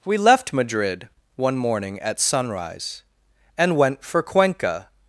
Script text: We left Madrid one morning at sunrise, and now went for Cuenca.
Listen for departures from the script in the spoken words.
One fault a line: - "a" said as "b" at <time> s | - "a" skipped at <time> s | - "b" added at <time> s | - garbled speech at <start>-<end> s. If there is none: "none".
- "now" skipped at 3.8 s